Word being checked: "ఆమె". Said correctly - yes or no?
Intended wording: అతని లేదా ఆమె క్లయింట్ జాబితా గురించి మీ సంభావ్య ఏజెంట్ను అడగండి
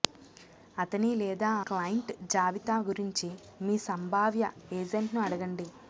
no